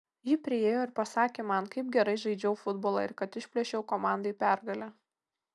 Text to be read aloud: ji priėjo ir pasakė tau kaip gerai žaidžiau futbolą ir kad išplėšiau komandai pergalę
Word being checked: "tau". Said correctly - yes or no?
no